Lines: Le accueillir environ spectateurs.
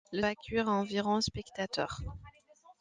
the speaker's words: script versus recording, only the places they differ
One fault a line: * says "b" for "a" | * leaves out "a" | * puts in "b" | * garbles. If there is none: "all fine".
all fine